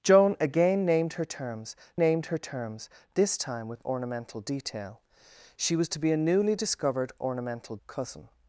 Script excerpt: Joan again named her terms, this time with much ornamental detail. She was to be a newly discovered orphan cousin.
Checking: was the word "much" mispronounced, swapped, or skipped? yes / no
yes